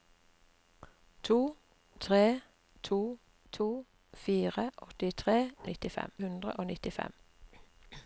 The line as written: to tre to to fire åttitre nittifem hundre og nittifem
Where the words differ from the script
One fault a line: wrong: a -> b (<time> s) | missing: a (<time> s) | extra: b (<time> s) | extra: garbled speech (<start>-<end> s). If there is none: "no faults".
no faults